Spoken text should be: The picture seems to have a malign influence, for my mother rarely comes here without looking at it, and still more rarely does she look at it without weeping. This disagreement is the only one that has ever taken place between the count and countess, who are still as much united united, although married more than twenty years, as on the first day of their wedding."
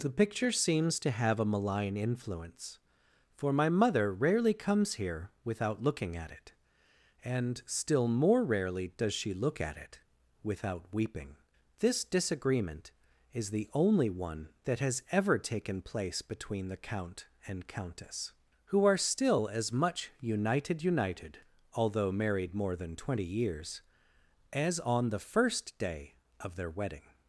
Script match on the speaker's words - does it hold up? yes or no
yes